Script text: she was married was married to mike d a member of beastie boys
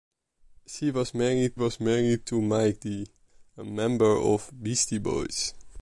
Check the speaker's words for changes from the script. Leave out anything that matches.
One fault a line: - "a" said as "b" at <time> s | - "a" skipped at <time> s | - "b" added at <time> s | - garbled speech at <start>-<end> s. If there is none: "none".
none